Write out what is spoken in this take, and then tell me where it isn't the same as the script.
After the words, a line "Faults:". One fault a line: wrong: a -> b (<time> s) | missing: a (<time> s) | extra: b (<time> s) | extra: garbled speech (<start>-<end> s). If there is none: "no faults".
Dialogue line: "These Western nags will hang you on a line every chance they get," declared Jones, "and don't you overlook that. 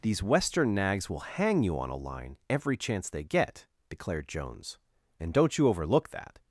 "These Western nags will hang you on a line every chance they get," declared Jones, "and don't you overlook that.
Faults:
no faults